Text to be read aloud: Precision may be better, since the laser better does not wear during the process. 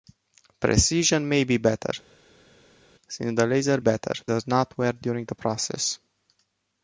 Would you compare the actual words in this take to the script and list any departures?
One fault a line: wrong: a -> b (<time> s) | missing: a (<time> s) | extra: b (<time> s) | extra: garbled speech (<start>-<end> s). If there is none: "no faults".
no faults